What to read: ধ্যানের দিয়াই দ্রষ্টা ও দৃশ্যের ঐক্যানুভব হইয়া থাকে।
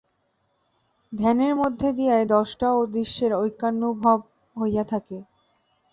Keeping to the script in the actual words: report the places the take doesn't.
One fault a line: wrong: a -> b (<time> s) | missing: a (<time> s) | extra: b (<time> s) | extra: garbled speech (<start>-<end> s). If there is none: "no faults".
extra: মধ্য (1.5 s)